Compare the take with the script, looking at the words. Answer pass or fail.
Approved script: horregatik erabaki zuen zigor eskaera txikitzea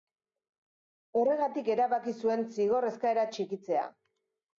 pass